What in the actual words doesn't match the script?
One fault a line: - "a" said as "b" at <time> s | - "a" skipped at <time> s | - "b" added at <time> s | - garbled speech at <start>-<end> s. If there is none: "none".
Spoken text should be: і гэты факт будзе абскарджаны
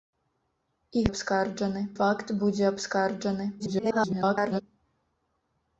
- "гэты" said as "абскарджаны" at 1.1 s
- garbled speech at 3.6-4.6 s